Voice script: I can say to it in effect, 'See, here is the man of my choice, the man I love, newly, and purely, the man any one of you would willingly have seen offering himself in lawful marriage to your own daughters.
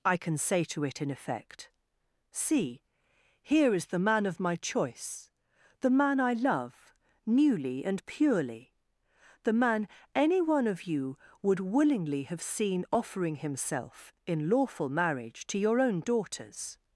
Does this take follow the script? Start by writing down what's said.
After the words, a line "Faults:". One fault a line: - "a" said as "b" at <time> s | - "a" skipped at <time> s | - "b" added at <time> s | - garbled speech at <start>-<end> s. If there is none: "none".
I can say to it in effect, 'See, here is the man of my choice, the man I love, newly, and purely, the man any one of you would willingly have seen offering himself in lawful marriage to your own daughters.
Faults:
none